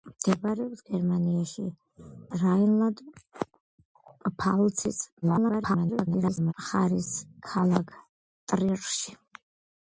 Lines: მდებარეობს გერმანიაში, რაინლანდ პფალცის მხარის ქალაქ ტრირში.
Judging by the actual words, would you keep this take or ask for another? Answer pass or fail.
fail